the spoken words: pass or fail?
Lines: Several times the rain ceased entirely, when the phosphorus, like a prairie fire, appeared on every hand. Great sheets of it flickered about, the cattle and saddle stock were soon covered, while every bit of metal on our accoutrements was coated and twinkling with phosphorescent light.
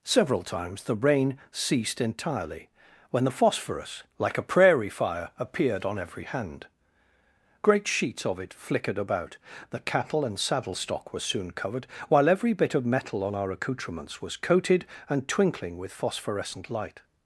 pass